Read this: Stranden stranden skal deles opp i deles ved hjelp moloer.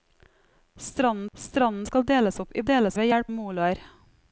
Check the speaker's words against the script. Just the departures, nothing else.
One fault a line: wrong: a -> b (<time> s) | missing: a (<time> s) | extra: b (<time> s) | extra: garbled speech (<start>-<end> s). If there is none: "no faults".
no faults